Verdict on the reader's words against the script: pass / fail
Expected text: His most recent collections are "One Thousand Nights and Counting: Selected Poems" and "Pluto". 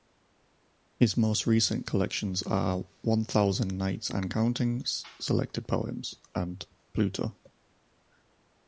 pass